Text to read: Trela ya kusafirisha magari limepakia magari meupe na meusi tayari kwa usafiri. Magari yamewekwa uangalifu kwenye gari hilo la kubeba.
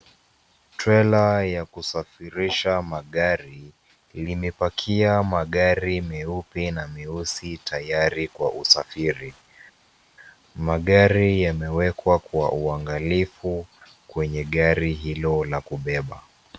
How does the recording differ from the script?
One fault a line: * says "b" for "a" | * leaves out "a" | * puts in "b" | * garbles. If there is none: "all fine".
* puts in "kwa"